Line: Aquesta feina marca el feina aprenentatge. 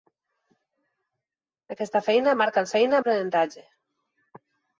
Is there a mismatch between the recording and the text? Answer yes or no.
no